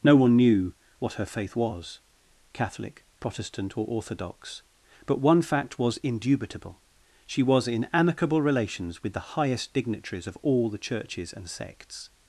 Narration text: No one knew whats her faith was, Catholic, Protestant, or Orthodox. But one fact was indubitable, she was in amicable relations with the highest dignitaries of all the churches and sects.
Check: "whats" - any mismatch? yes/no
yes